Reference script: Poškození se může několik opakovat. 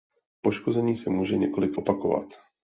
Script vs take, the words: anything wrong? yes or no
no